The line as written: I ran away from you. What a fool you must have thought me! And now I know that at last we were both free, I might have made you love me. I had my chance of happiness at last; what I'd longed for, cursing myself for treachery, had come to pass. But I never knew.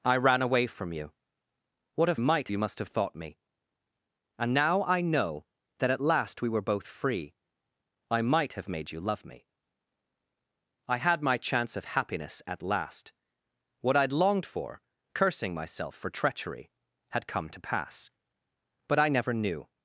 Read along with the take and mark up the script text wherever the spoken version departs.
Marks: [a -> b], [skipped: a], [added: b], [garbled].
I ran away from you. What a [fool -> might] you must have thought me! And now I know that at last we were both free, I might have made you love me. I had my chance of happiness at last; what I'd longed for, cursing myself for treachery, had come to pass. But I never knew.